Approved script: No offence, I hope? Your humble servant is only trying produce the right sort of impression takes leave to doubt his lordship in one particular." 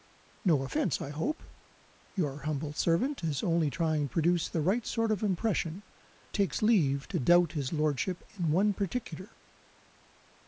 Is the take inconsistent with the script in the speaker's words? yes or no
no